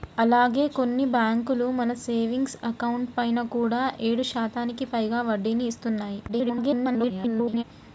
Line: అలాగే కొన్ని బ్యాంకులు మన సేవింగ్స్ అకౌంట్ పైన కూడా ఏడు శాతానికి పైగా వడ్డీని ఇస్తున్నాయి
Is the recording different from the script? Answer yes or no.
yes